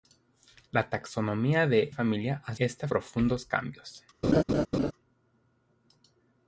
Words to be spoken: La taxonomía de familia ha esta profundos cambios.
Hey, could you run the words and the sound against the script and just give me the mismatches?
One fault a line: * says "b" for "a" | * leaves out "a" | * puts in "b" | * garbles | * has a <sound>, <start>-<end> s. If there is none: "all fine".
* has a laugh, 4.2-4.9 s